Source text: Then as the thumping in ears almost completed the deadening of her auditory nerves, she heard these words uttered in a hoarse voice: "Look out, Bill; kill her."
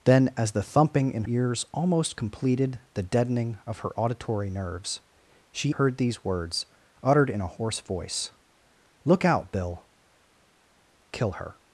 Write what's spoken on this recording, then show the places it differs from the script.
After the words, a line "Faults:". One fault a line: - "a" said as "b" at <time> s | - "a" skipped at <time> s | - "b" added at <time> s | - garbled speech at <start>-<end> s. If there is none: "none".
Then as the thumping in ears almost completed the deadening of her auditory nerves, she heard these words uttered in a hoarse voice: "Look out, Bill; kill her."
Faults:
none